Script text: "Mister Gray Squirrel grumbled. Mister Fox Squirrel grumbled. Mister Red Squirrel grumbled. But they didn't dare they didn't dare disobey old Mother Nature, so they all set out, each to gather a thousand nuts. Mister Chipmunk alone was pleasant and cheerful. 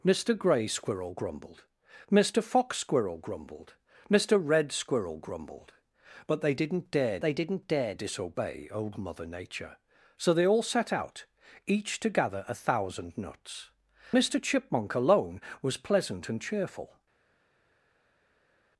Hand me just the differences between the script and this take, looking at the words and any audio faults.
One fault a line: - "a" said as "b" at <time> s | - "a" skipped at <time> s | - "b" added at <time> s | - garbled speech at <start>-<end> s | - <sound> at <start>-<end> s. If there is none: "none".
none